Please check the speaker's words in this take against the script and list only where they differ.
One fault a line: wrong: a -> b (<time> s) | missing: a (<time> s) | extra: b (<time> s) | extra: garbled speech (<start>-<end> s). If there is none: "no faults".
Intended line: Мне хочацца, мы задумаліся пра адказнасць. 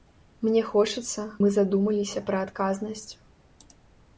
no faults